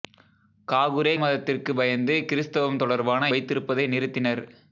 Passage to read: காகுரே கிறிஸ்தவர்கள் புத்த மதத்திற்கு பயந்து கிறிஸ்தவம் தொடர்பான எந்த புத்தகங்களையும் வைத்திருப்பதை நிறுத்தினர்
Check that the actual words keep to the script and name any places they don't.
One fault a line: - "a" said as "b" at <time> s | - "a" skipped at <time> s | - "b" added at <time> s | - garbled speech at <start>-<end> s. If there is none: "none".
- "கிறிஸ்தவர்கள் புத்த" skipped at 1.1 s
- "எந்த புத்தகங்களையும்" skipped at 3.3 s